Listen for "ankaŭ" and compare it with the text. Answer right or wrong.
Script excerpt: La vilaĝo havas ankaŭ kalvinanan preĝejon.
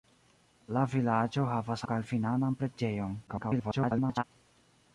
wrong